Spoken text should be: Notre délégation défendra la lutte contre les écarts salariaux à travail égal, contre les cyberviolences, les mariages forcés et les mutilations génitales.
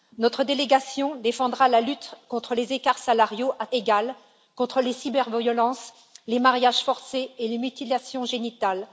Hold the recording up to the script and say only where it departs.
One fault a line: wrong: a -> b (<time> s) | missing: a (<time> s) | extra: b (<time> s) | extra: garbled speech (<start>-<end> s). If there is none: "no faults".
missing: travail (3.6 s)